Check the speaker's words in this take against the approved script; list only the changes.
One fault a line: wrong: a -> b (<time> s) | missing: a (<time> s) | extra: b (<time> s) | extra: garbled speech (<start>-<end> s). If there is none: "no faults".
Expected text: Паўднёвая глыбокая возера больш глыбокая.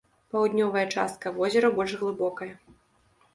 wrong: глыбокая -> частка (0.9 s)